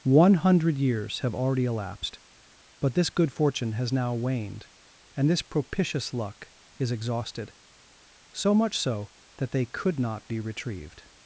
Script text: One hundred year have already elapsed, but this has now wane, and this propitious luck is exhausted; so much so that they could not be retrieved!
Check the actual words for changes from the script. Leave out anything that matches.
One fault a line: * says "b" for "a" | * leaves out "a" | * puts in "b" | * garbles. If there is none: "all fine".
* says "years" for "year"
* puts in "good fortune"
* says "waned" for "wane"